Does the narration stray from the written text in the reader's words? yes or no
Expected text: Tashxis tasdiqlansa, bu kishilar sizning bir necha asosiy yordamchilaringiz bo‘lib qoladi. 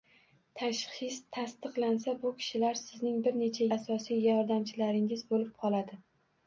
no